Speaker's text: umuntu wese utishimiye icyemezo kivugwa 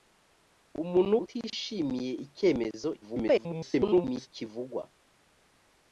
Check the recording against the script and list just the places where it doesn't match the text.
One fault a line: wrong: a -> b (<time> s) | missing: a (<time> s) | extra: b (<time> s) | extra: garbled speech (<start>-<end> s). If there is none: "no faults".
missing: wese (1.1 s)
extra: garbled speech (3.0-4.3 s)